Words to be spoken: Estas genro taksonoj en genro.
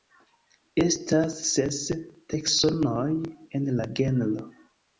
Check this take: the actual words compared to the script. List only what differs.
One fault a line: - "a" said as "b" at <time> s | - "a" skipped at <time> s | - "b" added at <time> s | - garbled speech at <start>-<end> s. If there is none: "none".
- "genro" said as "ses" at 1.5 s
- "la" added at 3.8 s